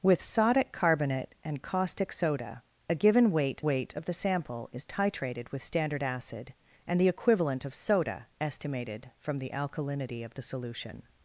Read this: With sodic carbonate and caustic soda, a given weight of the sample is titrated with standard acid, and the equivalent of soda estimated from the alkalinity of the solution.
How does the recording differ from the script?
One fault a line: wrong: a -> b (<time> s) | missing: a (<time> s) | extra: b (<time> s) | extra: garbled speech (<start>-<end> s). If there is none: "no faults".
extra: weight (3.6 s)